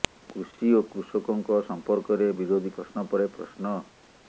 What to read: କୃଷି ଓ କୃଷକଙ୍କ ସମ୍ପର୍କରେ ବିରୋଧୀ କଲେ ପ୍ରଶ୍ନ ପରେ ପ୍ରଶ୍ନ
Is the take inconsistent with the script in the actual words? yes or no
yes